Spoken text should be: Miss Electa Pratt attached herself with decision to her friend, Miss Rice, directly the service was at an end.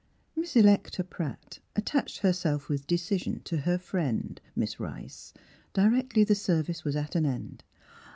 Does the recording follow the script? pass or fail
pass